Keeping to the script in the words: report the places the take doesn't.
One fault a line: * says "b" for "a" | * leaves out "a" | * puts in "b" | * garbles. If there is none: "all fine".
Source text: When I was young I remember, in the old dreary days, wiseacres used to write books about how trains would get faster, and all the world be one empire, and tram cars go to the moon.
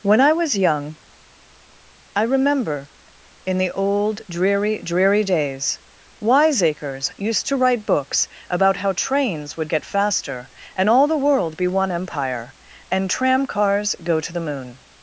* puts in "dreary"